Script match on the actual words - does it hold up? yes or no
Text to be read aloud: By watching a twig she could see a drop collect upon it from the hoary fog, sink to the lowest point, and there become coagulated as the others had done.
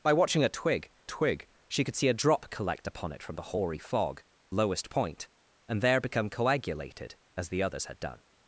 no